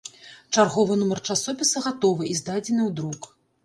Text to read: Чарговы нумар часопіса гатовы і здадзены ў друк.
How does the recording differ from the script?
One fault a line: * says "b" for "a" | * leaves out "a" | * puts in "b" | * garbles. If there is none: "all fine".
all fine